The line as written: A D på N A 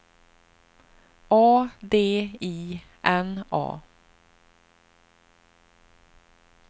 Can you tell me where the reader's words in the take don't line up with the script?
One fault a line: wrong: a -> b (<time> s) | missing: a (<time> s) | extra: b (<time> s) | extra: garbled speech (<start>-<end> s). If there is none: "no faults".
wrong: på -> I (2.4 s)